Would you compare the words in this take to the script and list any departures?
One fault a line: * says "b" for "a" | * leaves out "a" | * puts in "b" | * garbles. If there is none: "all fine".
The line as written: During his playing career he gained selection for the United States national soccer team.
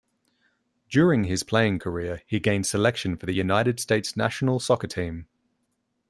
all fine